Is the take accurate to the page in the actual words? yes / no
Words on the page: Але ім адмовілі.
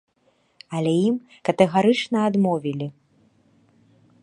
no